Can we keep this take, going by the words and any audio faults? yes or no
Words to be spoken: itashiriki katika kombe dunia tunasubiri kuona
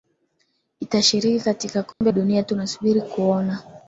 no